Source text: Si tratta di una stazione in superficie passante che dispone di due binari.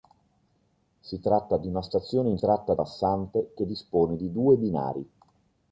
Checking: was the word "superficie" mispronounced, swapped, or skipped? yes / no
yes